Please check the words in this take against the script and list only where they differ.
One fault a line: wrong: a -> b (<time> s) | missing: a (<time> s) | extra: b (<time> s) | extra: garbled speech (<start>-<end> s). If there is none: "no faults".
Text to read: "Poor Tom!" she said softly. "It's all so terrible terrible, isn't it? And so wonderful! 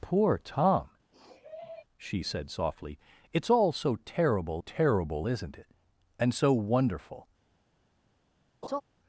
no faults